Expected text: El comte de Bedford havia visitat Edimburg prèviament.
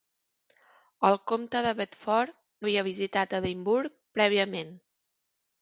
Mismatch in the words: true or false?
false